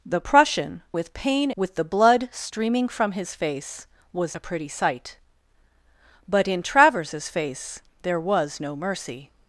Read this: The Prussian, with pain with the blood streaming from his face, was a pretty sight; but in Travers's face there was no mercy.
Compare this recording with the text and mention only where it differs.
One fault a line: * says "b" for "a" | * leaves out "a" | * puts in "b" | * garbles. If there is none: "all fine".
all fine